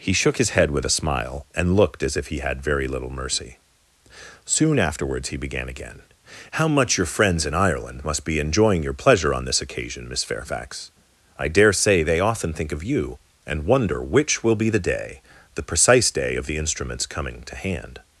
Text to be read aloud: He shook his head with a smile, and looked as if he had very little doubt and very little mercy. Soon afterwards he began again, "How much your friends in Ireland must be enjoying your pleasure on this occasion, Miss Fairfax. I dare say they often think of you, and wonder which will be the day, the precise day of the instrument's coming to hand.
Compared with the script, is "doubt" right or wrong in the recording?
wrong